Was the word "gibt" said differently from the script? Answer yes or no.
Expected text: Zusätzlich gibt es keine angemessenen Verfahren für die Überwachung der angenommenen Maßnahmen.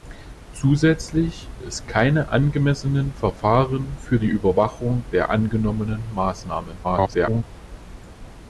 yes